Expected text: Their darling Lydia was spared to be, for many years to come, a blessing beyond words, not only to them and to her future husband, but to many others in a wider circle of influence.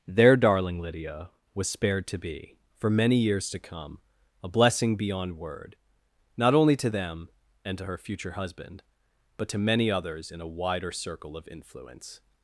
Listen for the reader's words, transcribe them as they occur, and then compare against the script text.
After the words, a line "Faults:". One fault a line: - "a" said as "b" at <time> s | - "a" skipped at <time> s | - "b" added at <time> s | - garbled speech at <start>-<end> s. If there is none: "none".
Their darling Lydia was spared to be, for many years to come, a blessing beyond word, not only to them and to her future husband, but to many others in a wider circle of influence.
Faults:
- "words" said as "word" at 5.4 s